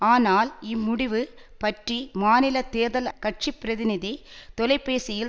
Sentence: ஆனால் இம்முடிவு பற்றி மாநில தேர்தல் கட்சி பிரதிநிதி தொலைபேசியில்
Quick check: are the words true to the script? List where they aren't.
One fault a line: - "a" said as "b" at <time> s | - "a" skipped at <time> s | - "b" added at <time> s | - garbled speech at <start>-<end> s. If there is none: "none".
none